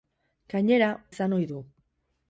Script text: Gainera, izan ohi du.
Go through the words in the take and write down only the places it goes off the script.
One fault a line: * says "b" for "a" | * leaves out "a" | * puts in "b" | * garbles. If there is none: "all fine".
all fine